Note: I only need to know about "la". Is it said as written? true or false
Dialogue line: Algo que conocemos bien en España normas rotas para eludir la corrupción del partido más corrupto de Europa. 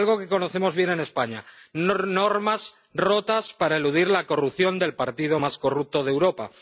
true